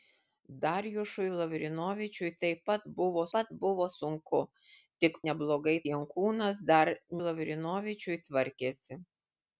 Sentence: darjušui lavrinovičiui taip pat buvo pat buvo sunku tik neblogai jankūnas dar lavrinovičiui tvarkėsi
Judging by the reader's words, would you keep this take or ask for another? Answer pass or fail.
pass